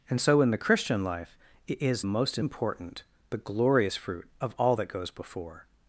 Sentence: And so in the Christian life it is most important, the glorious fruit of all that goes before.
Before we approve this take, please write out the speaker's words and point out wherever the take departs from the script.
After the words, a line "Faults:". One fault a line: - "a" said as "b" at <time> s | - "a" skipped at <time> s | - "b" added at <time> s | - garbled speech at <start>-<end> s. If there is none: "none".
And so in the Christian life it is most important, the glorious fruit of all that goes before.
Faults:
none